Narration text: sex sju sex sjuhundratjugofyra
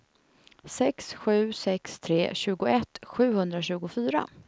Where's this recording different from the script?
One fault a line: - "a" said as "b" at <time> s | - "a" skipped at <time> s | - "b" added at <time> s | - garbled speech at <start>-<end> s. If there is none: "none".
- "tre tjugoett" added at 2.0 s